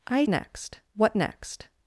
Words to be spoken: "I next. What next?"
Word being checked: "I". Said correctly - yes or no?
yes